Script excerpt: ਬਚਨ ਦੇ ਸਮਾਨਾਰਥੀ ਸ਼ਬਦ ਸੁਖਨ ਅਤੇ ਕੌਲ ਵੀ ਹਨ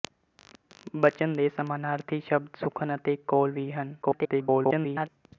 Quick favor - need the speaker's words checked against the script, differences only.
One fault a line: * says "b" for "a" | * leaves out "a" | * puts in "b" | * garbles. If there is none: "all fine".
* garbles